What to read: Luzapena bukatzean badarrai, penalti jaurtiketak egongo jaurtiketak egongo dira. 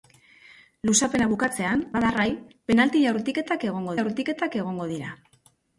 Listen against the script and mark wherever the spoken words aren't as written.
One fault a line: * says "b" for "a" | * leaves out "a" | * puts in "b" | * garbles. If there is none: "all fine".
all fine